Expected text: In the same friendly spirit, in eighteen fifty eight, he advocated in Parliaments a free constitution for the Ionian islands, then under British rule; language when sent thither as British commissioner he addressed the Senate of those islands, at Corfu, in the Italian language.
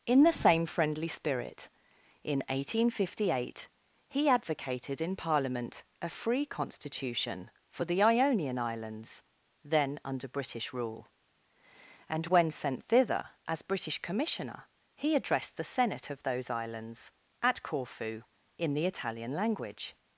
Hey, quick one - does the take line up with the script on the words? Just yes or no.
no